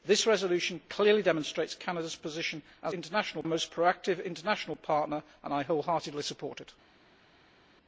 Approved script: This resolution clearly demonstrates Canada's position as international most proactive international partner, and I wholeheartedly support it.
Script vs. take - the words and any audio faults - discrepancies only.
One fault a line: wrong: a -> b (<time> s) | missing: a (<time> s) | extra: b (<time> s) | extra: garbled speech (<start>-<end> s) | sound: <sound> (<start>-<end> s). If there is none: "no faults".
no faults